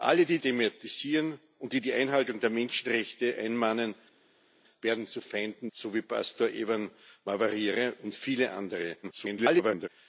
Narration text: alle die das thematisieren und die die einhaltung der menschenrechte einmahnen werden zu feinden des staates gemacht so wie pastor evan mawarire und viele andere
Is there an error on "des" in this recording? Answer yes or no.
yes